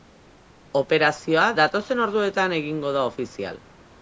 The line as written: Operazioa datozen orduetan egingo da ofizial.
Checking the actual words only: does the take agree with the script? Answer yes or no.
yes